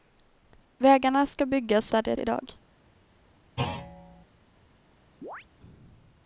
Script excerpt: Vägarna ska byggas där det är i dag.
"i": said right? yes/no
yes